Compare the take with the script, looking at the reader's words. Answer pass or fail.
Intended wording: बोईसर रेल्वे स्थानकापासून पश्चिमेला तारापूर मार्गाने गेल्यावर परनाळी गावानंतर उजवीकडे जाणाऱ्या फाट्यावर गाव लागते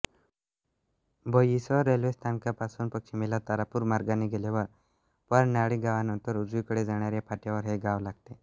fail